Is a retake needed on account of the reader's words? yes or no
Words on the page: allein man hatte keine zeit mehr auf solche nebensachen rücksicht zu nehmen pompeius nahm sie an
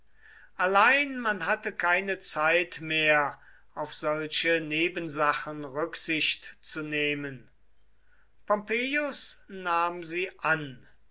no